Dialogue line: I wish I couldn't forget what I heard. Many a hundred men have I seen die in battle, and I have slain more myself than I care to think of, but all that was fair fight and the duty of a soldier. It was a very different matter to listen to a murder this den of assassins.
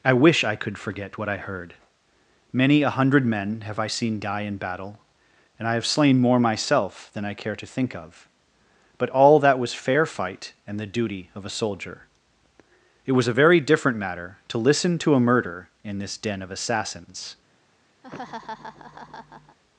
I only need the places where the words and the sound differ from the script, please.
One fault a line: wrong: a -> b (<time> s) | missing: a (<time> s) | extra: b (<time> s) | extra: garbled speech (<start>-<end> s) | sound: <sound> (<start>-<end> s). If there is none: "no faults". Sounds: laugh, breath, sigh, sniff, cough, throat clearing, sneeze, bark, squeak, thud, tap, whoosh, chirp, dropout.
wrong: couldn't -> could (0.6 s)
extra: in (15.8 s)
sound: laugh (18.0-19.6 s)